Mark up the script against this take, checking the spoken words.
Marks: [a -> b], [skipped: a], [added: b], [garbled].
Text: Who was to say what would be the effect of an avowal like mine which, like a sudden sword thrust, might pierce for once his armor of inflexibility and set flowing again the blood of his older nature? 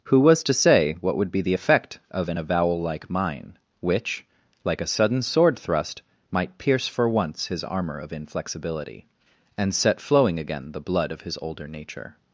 Who was to say what would be the effect of an avowal like mine which, like a sudden sword thrust, might pierce for once his armor of inflexibility and set flowing again the blood of his older nature?